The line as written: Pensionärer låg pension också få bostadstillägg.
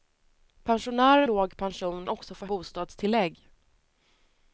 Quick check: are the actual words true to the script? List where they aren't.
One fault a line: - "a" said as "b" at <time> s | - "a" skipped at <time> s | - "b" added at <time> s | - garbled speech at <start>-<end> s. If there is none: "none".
none